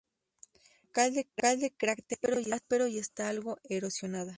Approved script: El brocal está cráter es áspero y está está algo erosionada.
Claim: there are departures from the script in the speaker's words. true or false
true